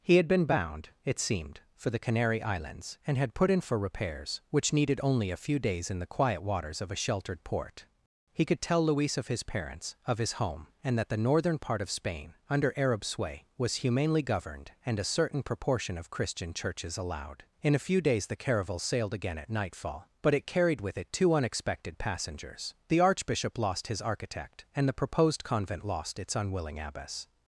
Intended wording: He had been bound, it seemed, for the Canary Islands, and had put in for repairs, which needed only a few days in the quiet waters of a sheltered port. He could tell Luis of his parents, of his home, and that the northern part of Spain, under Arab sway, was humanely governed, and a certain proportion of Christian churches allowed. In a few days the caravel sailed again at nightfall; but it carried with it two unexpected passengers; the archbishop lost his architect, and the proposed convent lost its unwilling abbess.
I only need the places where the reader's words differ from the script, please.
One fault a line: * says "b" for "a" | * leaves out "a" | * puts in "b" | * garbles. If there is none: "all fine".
all fine